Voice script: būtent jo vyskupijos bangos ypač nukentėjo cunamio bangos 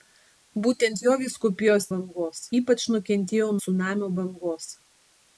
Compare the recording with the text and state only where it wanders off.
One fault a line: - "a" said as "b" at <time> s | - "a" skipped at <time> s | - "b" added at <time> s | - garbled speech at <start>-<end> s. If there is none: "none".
none